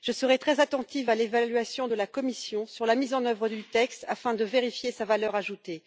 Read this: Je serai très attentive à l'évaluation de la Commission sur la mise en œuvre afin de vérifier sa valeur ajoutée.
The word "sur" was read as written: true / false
true